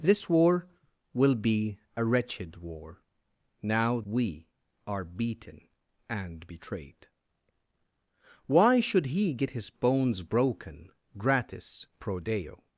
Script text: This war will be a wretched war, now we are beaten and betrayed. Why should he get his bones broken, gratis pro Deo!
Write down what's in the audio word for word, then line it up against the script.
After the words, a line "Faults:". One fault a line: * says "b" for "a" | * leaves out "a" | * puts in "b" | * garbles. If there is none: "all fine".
This war will be a wretched war, now we are beaten and betrayed. Why should he get his bones broken, gratis pro Deo!
Faults:
all fine